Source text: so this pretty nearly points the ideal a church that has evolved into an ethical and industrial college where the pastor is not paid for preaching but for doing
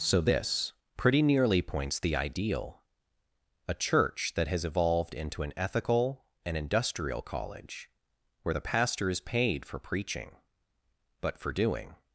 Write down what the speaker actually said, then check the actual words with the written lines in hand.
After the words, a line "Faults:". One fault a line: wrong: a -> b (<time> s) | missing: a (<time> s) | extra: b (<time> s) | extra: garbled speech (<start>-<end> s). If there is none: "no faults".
so this pretty nearly points the ideal a church that has evolved into an ethical and industrial college where the pastor is paid for preaching but for doing
Faults:
missing: not (9.2 s)